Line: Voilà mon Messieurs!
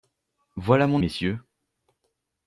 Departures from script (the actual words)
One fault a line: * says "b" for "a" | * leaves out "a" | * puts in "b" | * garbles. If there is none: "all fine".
all fine